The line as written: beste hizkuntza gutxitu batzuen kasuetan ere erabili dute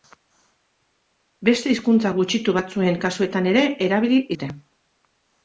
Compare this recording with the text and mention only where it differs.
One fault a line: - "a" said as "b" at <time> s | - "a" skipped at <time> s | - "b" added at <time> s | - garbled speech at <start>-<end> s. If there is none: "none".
none